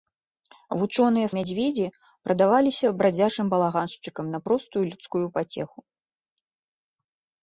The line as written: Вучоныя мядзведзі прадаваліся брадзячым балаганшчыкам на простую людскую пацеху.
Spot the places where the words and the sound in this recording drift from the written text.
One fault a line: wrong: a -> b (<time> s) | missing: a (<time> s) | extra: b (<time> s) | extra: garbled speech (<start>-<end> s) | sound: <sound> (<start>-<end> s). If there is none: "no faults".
no faults